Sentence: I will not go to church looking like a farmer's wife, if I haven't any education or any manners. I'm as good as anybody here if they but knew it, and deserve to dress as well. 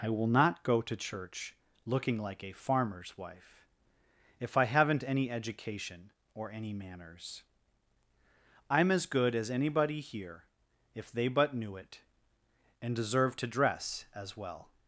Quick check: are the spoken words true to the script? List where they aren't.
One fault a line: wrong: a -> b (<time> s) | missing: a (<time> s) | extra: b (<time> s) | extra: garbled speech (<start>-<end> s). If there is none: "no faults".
no faults